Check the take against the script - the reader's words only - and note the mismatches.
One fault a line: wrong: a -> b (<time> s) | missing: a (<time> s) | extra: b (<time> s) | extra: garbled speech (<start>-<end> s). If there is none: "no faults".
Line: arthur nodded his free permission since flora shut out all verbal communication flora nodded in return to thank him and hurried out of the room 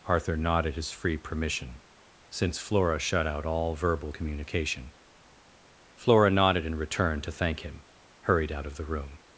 missing: and (7.8 s)